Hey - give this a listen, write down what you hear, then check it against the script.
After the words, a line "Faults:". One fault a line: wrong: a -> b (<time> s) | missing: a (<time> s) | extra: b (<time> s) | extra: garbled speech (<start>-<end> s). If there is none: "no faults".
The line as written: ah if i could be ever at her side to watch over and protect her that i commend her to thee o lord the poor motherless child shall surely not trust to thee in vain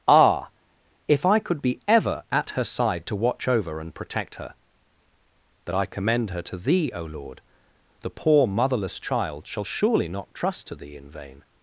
ah if i could be ever at her side to watch over and protect her that i commend her to thee o lord the poor motherless child shall surely not trust to thee in vain
Faults:
no faults